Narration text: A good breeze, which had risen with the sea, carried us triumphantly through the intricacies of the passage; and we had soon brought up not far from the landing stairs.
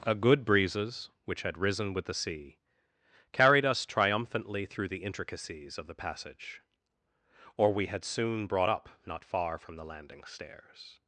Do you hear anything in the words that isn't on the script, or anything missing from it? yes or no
yes